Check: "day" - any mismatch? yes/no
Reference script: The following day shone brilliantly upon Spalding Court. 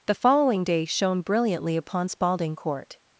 no